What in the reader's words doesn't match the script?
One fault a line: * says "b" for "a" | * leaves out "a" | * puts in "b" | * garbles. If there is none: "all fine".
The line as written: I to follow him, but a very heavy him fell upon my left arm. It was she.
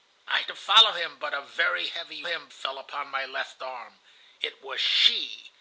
all fine